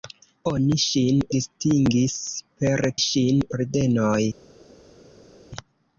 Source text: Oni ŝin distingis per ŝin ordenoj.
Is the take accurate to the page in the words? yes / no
yes